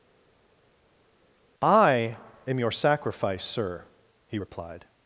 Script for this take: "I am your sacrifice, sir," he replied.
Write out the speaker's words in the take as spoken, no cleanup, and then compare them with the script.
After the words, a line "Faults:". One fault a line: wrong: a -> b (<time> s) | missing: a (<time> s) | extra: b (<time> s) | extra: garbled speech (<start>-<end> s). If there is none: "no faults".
"I am your sacrifice, sir," he replied.
Faults:
no faults